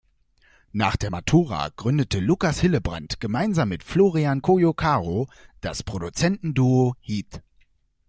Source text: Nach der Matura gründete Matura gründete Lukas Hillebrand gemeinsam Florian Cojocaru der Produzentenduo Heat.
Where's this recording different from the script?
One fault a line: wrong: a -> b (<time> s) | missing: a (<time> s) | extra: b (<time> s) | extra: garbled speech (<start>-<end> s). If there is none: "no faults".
missing: Matura gründete (2.2 s)
extra: mit (3.7 s)
wrong: der -> das (5.6 s)